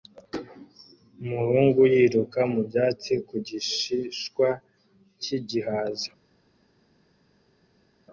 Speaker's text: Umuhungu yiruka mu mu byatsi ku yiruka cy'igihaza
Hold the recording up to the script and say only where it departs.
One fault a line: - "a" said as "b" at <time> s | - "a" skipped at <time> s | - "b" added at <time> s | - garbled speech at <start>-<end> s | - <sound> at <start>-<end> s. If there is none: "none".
- "mu" skipped at 2.6 s
- "yiruka" said as "gishishwa" at 3.5 s